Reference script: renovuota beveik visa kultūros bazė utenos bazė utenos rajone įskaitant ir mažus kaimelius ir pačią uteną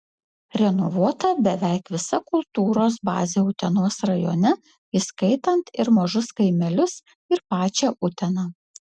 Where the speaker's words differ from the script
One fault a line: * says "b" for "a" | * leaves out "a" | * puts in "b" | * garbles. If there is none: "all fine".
* leaves out "bazė utenos"